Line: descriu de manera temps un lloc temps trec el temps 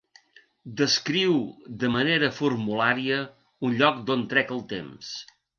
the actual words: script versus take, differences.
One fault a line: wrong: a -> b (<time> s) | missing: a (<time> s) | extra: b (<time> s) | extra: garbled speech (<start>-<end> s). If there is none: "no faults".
wrong: temps -> formulària (2.4 s)
wrong: temps -> d'on (4.1 s)